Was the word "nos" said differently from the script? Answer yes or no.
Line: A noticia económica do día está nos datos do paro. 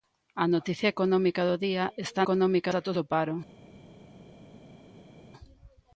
yes